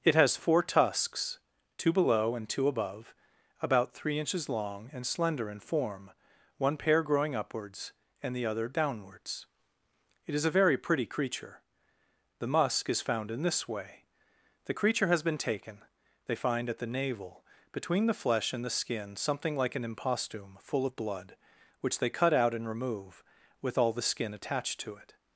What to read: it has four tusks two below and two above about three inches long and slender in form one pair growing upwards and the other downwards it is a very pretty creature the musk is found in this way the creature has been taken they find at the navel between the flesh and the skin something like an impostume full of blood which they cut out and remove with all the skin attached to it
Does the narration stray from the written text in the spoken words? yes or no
no